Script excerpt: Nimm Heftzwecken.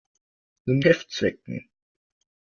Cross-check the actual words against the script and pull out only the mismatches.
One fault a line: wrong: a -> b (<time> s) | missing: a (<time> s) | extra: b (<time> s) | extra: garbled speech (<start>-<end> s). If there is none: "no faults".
no faults